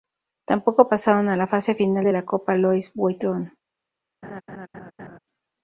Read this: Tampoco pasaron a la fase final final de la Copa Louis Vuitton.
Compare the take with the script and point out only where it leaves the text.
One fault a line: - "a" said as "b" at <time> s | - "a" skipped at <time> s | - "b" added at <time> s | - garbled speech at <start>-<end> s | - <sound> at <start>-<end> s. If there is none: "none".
- "final" skipped at 2.1 s
- laugh at 4.2-5.2 s